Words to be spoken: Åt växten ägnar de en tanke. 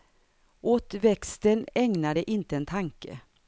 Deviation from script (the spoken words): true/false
true